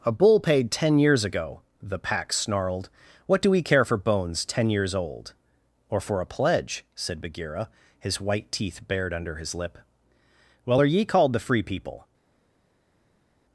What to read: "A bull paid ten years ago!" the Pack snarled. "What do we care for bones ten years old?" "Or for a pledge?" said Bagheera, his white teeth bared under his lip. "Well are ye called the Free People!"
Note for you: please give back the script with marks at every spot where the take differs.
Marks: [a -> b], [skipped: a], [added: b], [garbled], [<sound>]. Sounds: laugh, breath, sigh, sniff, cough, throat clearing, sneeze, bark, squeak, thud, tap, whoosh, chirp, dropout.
"A bull paid ten years ago!" the Pack snarled. "What do we care for bones ten years old?" "Or for a pledge?" said Bagheera, his white teeth bared under his lip. "Well are ye called the Free People!"